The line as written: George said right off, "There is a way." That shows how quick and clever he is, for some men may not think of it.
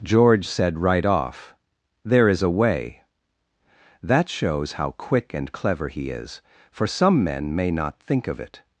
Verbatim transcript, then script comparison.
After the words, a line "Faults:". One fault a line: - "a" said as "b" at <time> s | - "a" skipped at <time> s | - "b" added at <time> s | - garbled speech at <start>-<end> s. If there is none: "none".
George said right off, "There is a way." That shows how quick and clever he is, for some men may not think of it.
Faults:
none